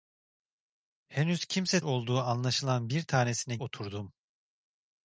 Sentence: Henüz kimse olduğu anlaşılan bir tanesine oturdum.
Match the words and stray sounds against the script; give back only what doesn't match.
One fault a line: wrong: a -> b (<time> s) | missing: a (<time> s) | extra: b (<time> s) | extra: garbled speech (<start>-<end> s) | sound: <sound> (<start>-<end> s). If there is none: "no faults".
no faults